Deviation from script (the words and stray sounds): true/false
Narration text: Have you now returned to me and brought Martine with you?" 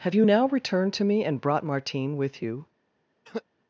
true